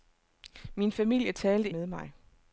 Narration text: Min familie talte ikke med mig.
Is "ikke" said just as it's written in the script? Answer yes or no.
no